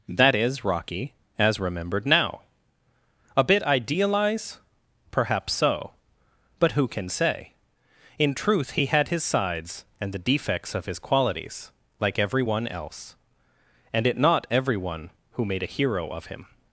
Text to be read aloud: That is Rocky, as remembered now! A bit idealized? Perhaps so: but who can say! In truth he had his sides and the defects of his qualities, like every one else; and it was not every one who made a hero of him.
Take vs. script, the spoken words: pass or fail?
fail